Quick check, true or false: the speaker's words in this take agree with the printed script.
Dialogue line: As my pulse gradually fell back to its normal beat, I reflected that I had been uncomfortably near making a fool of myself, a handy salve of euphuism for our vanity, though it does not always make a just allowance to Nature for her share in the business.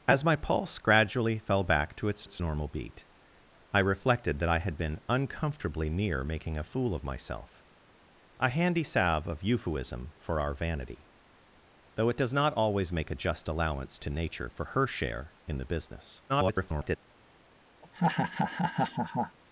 false